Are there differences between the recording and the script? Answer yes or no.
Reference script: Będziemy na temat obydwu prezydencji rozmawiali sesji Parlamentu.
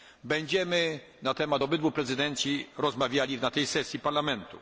yes